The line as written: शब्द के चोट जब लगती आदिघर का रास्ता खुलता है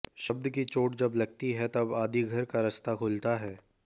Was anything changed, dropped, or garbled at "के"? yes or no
yes